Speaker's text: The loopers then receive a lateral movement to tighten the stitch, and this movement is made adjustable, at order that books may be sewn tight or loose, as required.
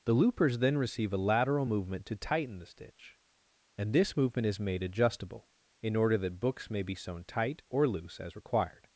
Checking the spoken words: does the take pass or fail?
fail